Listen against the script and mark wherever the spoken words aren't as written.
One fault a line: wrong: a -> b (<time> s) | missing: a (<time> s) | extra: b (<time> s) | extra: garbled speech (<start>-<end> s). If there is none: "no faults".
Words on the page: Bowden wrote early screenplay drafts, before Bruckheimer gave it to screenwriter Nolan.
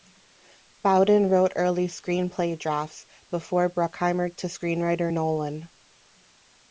missing: gave it (4.3 s)